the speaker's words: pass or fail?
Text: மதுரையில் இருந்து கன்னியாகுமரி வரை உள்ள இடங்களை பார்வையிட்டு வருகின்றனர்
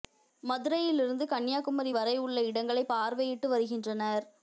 pass